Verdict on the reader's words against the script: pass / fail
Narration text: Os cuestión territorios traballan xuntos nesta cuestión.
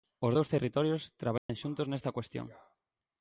fail